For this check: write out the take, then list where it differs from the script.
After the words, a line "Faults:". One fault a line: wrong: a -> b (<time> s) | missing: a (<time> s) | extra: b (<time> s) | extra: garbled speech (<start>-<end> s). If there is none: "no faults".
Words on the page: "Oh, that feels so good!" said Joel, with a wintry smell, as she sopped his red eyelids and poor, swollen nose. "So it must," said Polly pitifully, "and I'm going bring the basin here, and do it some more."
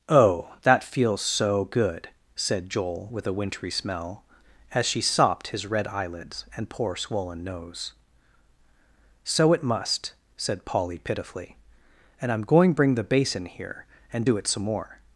"Oh, that feels so good!" said Joel, with a wintry smell, as she sopped his red eyelids and poor, swollen nose. "So it must," said Polly pitifully, "and I'm going bring the basin here, and do it some more."
Faults:
no faults